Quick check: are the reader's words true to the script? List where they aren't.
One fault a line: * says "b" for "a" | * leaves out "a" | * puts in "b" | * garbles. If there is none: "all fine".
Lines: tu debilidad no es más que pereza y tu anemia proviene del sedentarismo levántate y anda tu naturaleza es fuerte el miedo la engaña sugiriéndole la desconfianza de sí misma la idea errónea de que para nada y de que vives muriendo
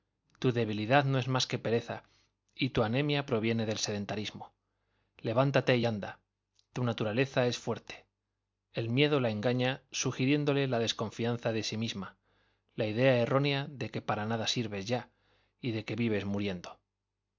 * puts in "sirves ya"